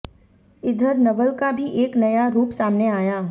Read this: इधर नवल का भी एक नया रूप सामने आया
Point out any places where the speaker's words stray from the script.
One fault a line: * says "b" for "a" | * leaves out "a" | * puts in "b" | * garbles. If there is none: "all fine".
all fine